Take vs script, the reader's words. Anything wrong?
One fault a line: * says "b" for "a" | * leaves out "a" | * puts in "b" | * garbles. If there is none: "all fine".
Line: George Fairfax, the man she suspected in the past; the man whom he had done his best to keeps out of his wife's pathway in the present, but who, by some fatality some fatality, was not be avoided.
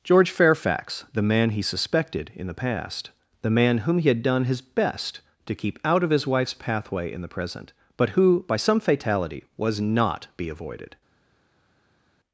* says "he" for "she"
* says "keep" for "keeps"
* leaves out "some fatality"